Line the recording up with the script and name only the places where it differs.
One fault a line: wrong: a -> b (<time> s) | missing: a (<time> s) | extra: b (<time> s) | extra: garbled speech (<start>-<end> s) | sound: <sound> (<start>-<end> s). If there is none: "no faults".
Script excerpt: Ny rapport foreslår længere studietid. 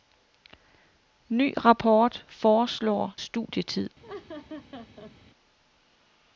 missing: længere (3.1 s)
sound: laugh (4.0-5.1 s)